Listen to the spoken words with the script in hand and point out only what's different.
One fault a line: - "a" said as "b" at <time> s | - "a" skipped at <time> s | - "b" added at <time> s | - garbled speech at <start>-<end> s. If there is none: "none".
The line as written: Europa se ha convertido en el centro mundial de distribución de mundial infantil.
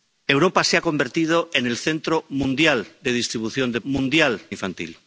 none